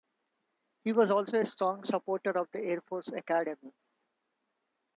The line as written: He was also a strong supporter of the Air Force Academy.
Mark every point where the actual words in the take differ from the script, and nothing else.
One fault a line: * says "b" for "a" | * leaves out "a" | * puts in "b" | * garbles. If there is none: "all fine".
all fine